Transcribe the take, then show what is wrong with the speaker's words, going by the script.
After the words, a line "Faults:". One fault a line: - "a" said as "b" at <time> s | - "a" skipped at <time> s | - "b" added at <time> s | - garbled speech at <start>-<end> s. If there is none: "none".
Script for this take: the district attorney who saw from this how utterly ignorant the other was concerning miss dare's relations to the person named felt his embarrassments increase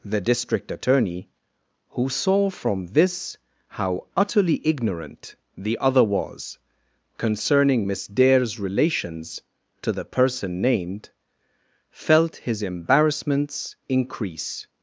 the district attorney who saw from this how utterly ignorant the other was concerning miss dare's relations to the person named felt his embarrassments increase
Faults:
none